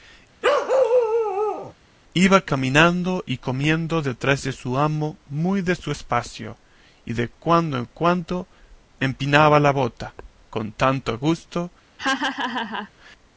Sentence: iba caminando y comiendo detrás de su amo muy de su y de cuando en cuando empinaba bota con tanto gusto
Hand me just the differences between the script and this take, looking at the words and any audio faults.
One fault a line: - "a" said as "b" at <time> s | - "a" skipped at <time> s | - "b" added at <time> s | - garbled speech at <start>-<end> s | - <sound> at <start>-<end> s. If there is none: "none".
- bark at 0.4-1.7 s
- "espacio" added at 5.9 s
- "la" added at 9.6 s
- laugh at 12.0-12.9 s